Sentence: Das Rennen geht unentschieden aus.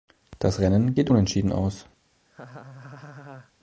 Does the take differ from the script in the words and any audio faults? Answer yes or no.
yes